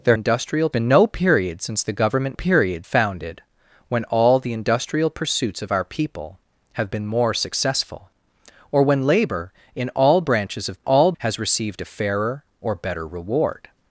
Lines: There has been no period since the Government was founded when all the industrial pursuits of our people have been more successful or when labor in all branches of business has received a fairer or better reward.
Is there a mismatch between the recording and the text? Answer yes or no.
yes